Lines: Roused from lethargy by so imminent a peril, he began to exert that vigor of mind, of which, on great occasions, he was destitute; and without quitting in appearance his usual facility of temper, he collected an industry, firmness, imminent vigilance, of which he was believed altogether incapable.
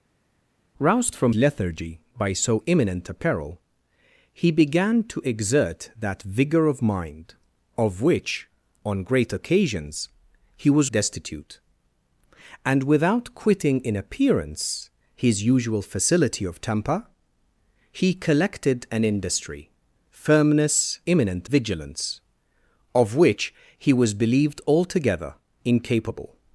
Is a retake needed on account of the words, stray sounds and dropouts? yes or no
no